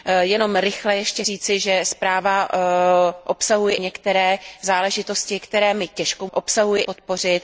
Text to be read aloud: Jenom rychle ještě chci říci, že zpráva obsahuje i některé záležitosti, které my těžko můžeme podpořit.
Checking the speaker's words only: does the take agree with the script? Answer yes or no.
no